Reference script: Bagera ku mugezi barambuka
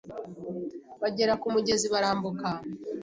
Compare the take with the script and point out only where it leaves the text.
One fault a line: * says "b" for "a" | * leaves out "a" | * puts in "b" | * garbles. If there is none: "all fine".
all fine